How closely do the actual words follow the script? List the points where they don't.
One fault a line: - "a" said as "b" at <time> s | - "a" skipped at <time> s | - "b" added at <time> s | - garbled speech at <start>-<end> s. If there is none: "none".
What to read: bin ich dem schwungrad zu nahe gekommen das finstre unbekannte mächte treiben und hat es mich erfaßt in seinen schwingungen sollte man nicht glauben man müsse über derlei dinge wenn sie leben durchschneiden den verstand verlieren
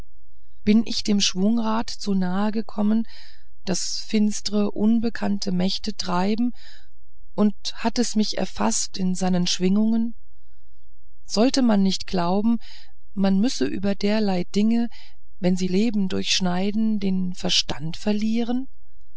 none